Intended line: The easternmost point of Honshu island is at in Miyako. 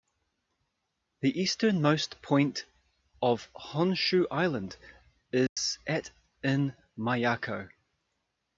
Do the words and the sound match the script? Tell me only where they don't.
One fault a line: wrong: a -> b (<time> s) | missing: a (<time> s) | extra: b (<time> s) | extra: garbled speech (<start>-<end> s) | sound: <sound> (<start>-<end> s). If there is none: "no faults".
sound: dropout (5.5-5.6 s)